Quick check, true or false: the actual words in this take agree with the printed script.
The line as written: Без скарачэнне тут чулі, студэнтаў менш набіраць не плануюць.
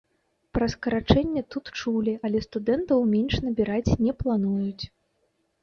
false